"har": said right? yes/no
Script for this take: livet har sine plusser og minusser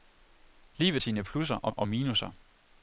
no